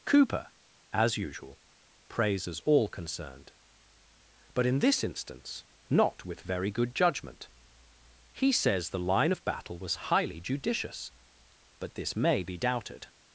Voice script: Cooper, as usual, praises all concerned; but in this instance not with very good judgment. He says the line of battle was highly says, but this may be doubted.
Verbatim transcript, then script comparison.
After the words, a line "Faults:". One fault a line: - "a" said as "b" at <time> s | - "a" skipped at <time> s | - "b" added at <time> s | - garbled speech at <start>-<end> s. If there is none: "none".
Cooper, as usual, praises all concerned; but in this instance not with very good judgment. He says the line of battle was highly judicious, but this may be doubted.
Faults:
- "says" said as "judicious" at 10.4 s